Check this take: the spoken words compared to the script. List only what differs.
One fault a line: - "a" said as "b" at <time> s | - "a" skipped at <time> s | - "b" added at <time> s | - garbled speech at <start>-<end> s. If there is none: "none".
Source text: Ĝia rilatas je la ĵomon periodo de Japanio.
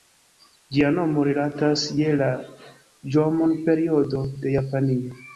- "nomo" added at 0.9 s